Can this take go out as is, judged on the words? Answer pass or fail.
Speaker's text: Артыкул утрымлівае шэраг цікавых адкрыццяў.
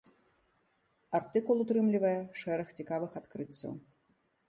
pass